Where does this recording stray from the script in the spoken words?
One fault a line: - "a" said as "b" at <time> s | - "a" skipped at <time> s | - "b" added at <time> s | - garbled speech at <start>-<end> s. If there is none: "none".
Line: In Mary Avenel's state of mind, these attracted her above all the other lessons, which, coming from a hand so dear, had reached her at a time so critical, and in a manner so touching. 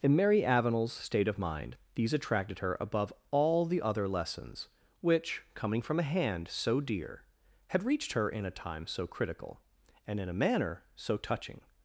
- "at" said as "in" at 8.3 s